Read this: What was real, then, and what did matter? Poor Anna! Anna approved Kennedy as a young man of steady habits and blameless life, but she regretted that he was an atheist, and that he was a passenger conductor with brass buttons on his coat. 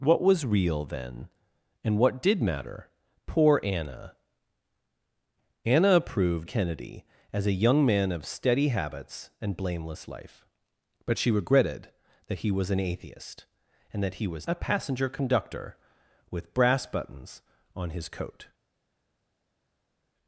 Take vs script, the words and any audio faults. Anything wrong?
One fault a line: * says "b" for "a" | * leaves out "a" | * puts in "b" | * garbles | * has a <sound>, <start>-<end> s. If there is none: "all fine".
all fine